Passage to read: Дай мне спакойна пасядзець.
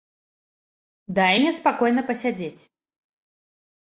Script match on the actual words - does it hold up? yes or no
yes